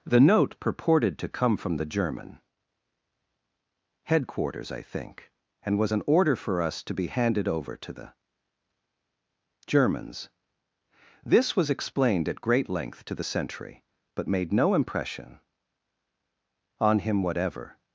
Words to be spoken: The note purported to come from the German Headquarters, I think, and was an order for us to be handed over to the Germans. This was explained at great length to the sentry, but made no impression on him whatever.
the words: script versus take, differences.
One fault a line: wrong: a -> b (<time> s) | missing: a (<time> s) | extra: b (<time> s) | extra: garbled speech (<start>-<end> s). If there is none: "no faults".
no faults